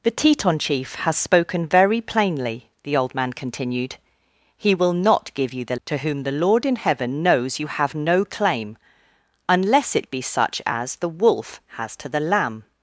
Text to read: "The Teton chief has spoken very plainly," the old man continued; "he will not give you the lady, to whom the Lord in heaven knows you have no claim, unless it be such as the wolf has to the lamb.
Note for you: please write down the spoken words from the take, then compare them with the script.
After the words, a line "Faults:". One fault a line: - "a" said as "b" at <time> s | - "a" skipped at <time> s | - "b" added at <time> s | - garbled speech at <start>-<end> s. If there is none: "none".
"The Teton chief has spoken very plainly," the old man continued; "he will not give you the to whom the Lord in heaven knows you have no claim, unless it be such as the wolf has to the lamb.
Faults:
- "lady" skipped at 5.8 s